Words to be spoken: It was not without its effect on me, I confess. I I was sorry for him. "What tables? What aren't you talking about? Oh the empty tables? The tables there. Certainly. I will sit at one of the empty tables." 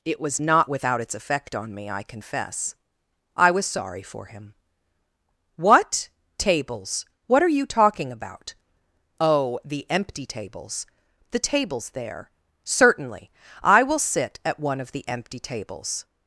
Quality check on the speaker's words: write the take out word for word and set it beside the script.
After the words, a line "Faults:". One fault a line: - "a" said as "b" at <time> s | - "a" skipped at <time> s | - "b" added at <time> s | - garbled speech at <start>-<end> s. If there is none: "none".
It was not without its effect on me, I confess. I was sorry for him. "What tables? What are you talking about? Oh the empty tables? The tables there. Certainly. I will sit at one of the empty tables."
Faults:
- "I" skipped at 3.5 s
- "aren't" said as "are" at 7.4 s